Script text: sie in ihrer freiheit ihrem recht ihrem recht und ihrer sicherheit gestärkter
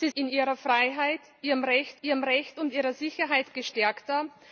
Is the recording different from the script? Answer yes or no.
no